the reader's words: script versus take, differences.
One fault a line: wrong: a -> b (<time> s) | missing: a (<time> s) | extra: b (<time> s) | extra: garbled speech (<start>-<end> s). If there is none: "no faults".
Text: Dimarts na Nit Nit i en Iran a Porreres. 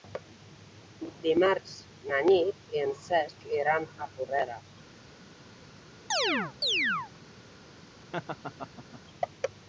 missing: Nit (2.7 s)
extra: Cesc (3.0 s)